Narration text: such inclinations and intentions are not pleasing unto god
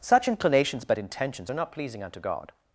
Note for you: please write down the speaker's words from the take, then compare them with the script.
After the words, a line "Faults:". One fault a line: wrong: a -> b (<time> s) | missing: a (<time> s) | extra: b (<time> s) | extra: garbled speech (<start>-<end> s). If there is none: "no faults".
such inclinations but intentions are not pleasing unto god
Faults:
wrong: and -> but (0.9 s)